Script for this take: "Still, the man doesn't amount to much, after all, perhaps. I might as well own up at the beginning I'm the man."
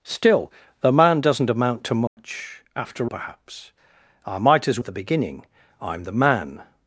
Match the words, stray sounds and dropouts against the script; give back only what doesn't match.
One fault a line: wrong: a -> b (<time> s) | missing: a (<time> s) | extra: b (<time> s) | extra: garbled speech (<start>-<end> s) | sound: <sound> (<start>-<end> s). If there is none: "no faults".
sound: dropout (2.1-2.2 s)
missing: all (3.1 s)
missing: well own up (4.8 s)